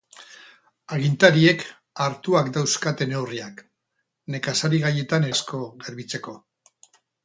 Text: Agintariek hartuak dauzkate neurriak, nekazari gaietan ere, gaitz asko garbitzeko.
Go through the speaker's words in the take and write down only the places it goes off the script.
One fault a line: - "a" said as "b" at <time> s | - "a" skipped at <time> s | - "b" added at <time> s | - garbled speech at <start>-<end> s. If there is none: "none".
- "ere gaitz" skipped at 5.3 s